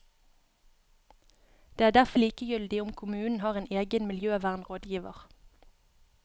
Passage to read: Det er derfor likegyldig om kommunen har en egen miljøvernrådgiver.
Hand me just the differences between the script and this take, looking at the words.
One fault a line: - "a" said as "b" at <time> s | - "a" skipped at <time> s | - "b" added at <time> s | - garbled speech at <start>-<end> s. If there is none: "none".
none